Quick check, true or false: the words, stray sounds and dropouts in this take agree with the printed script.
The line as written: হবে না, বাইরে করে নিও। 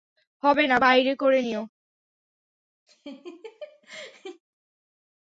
false